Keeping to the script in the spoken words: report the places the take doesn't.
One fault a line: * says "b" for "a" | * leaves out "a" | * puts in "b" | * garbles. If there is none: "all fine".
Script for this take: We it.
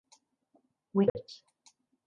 all fine